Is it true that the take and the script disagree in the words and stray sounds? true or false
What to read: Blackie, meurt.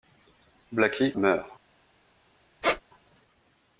true